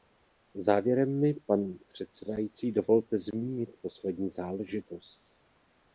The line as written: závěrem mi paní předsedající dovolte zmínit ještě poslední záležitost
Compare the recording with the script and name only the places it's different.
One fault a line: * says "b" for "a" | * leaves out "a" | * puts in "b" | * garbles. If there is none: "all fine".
* leaves out "ještě"